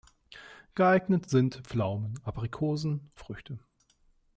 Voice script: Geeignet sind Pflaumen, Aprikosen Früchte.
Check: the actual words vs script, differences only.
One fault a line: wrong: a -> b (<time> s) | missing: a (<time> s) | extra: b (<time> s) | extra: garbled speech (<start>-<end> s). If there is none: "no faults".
no faults